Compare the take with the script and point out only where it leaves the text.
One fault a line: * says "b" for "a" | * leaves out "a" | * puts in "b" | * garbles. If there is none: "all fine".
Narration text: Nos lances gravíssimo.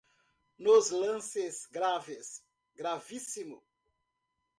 * puts in "graves"